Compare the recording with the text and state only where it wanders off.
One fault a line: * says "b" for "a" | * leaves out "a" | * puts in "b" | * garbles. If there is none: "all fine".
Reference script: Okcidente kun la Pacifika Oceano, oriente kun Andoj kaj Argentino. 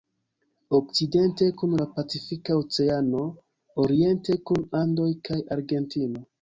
all fine